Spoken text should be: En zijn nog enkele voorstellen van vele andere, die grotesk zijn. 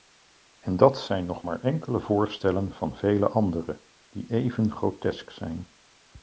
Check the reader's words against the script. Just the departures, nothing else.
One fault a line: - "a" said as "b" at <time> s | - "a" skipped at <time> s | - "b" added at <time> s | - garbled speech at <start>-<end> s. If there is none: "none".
- "dat" added at 0.8 s
- "maar" added at 1.4 s
- "even" added at 4.3 s